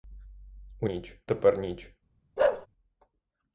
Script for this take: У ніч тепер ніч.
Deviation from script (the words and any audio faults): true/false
true